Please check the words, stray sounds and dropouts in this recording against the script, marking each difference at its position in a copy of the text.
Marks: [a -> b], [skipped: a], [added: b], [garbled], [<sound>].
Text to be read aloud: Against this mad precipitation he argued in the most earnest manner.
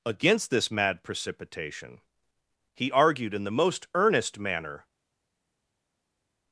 Against this mad precipitation he argued in the most earnest manner.